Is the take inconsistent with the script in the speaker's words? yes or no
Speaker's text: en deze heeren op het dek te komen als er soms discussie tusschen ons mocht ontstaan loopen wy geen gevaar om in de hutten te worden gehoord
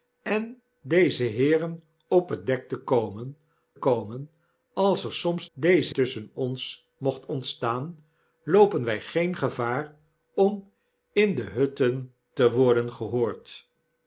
yes